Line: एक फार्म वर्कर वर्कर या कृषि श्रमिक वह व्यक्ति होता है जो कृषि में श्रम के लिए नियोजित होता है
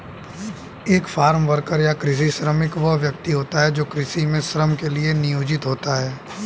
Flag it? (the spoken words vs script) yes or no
yes